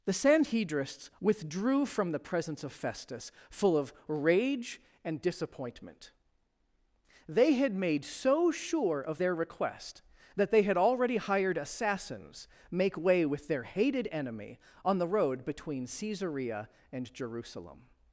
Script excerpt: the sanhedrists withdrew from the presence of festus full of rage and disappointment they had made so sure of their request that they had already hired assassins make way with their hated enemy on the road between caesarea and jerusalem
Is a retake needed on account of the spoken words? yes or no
no